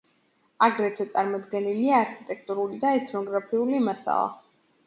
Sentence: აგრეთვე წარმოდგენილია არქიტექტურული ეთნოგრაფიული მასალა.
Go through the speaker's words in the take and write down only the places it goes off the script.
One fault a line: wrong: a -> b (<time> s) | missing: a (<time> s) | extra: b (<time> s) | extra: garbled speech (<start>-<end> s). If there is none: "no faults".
extra: და (2.9 s)